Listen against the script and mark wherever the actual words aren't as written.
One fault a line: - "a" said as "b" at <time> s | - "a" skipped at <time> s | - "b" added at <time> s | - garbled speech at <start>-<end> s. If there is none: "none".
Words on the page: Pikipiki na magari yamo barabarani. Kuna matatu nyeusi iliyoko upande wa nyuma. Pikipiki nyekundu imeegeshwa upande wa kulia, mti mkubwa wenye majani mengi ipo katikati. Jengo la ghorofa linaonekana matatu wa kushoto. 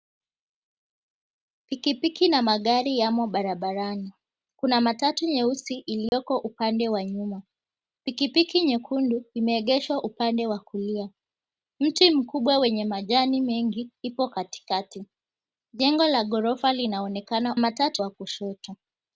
none